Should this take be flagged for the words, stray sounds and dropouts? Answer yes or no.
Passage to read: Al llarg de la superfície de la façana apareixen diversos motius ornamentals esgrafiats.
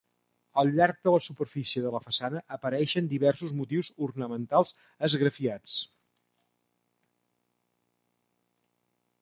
no